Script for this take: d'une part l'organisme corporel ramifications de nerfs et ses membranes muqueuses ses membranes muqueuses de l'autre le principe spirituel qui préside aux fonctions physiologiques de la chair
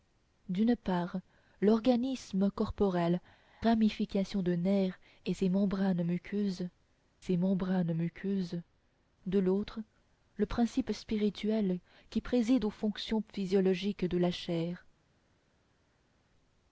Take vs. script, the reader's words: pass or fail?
pass